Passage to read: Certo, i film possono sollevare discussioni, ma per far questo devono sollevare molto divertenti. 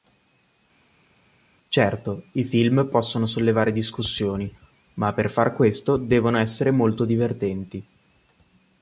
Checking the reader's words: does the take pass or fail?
fail